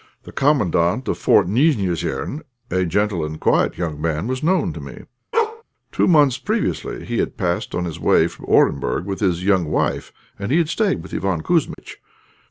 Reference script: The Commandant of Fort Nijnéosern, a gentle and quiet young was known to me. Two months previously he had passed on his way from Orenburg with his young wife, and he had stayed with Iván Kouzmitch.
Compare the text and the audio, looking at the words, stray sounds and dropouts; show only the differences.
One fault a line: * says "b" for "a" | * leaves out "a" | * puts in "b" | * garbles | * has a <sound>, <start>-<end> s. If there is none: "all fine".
* puts in "man"
* has a bark, 5.3-5.6 s
* has a dropout, 11.7-11.8 s